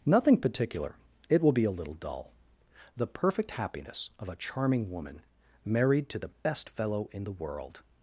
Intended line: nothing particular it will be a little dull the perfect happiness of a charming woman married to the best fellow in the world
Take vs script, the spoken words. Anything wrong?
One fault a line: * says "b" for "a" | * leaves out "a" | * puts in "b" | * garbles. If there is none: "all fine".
all fine